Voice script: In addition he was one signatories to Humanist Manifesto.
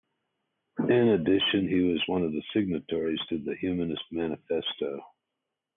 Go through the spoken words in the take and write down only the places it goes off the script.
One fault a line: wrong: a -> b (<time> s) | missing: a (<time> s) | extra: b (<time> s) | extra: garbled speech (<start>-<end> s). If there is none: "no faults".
extra: of the (2.2 s)
extra: the (3.4 s)